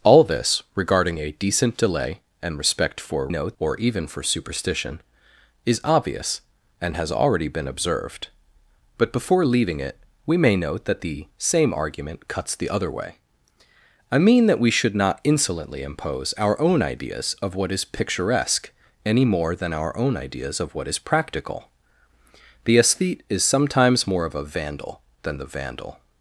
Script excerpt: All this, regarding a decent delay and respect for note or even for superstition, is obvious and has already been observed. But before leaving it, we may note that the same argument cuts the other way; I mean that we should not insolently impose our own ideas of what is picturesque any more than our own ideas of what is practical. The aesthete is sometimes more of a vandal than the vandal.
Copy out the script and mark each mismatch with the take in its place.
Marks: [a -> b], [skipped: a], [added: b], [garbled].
All this, regarding a decent delay and respect for note or even for superstition, is obvious and has already been observed. But before leaving it, we may note that the same argument cuts the other way; I mean that we should not insolently impose our own ideas of what is picturesque any more than our own ideas of what is practical. The aesthete is sometimes more of a vandal than the vandal.